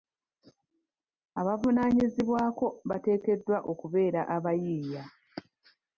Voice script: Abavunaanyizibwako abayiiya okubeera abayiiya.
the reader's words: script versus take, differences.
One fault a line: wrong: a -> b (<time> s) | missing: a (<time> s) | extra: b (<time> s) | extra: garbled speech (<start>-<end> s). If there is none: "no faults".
wrong: abayiiya -> bateekeddwa (2.9 s)